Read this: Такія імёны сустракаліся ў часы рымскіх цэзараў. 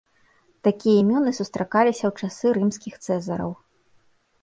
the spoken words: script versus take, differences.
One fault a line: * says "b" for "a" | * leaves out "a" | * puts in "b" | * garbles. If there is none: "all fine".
all fine